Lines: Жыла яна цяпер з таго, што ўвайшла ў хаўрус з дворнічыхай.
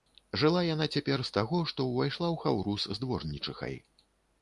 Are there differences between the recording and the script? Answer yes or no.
no